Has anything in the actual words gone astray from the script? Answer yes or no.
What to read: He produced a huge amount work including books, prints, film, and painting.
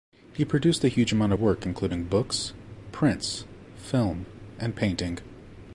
no